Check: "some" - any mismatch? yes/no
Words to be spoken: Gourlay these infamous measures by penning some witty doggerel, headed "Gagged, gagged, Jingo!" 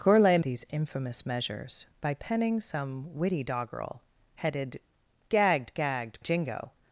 no